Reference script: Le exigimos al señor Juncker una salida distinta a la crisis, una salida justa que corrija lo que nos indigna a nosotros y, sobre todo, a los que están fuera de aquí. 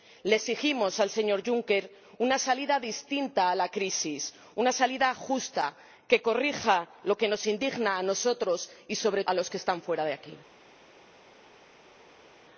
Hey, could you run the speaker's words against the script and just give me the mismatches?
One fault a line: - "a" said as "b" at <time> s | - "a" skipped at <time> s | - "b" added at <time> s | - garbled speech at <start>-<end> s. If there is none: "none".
- "todo" skipped at 9.2 s